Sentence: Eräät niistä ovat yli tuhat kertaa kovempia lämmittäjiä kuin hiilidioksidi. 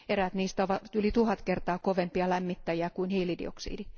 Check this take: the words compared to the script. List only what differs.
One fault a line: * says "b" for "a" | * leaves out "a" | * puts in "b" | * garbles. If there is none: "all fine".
all fine